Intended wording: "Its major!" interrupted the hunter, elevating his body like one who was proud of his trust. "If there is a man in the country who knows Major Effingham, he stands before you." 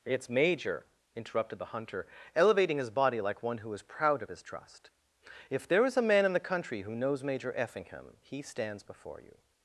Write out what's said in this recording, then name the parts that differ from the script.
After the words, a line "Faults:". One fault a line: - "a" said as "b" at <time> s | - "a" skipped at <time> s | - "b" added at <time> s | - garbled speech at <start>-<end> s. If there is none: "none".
"Its major!" interrupted the hunter, elevating his body like one who is proud of his trust. "If there is a man in the country who knows Major Effingham, he stands before you."
Faults:
- "was" said as "is" at 3.7 s